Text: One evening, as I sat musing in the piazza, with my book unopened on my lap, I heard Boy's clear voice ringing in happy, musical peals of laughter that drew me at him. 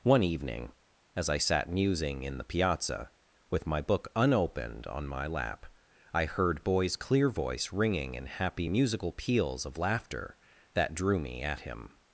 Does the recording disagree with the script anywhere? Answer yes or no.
no